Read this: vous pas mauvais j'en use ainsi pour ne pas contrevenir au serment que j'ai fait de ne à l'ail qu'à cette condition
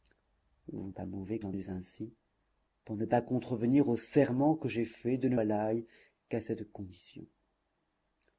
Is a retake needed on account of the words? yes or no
no